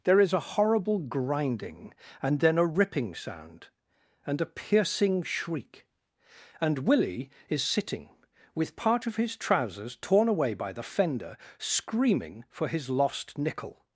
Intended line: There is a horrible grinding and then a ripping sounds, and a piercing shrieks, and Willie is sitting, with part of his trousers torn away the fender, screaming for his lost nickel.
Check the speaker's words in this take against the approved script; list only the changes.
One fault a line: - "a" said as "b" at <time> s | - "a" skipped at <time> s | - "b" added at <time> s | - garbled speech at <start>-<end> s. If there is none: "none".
- "sounds" said as "sound" at 3.1 s
- "shrieks" said as "shriek" at 5.2 s
- "by" added at 10.5 s